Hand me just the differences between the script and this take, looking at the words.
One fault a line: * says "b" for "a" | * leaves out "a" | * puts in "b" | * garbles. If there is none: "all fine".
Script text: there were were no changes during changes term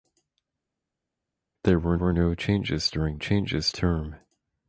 all fine